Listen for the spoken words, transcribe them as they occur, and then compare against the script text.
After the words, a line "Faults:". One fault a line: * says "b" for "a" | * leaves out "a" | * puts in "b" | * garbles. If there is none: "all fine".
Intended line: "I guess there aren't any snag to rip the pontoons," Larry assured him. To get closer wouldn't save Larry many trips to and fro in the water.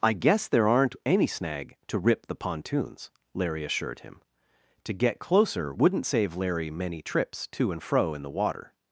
"I guess there aren't any snag to rip the pontoons," Larry assured him. To get closer wouldn't save Larry many trips to and fro in the water.
Faults:
all fine